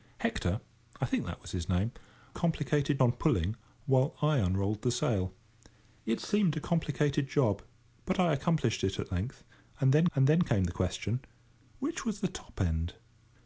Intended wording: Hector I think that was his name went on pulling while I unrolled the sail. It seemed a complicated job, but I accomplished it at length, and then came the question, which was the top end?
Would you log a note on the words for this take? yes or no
yes